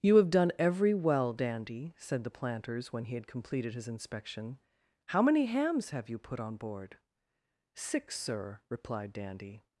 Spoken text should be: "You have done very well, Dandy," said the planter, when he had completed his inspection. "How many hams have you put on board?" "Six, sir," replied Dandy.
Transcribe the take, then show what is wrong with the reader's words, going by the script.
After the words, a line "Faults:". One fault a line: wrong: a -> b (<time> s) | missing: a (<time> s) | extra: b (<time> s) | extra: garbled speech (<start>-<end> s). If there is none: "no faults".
"You have done every well, Dandy," said the planters, when he had completed his inspection. "How many hams have you put on board?" "Six, sir," replied Dandy.
Faults:
wrong: very -> every (0.6 s)
wrong: planter -> planters (2.3 s)